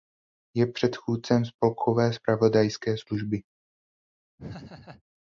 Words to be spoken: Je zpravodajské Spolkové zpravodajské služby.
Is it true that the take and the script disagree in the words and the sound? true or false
true